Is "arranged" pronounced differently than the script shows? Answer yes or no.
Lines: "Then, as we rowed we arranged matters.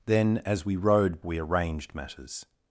no